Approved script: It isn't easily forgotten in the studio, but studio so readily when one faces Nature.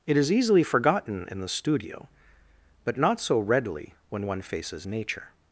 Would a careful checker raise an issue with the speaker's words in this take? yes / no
yes